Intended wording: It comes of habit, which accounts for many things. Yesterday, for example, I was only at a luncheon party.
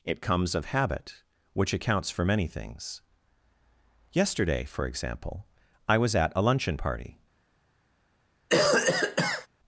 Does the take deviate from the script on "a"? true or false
false